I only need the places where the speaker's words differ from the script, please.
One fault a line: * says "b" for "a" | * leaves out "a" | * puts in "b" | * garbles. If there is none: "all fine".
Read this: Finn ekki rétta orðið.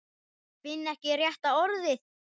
all fine